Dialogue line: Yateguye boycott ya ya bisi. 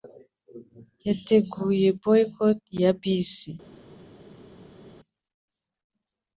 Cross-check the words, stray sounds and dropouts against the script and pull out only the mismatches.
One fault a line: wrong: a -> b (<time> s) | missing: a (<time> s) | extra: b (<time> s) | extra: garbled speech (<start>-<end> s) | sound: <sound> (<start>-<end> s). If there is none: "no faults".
missing: ya (2.9 s)